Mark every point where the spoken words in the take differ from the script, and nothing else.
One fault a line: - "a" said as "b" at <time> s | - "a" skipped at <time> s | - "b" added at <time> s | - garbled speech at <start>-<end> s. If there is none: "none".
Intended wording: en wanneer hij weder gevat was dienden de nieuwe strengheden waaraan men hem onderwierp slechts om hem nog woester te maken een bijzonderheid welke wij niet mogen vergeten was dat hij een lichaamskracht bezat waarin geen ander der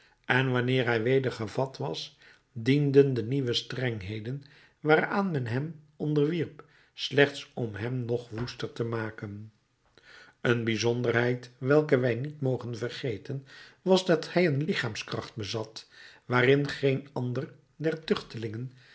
none